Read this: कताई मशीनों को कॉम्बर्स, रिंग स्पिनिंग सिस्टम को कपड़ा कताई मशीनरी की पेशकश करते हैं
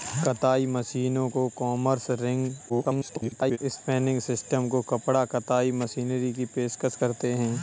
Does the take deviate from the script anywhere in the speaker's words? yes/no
yes